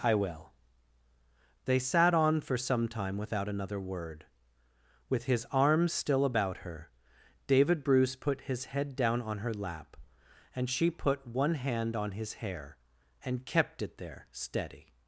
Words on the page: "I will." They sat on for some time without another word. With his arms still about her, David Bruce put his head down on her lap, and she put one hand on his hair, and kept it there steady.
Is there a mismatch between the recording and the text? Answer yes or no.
no